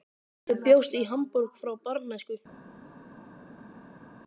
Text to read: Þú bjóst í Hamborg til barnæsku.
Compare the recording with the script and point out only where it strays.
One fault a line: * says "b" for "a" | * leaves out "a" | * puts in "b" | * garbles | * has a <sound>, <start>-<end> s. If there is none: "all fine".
* says "frá" for "til"